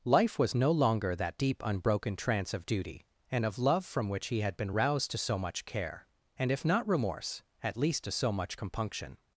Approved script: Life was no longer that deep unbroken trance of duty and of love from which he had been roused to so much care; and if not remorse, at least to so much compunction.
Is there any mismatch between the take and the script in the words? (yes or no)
no